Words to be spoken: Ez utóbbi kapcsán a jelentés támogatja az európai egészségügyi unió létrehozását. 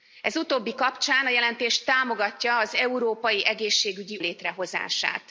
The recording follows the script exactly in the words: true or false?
false